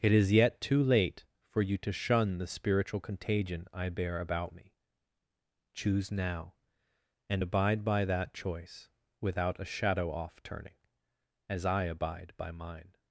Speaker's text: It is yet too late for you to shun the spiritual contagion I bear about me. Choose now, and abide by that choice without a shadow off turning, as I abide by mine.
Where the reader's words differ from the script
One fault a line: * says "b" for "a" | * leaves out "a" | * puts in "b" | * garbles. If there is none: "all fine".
all fine